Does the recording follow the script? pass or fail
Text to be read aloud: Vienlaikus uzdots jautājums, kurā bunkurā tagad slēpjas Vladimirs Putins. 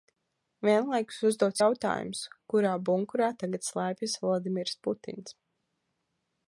pass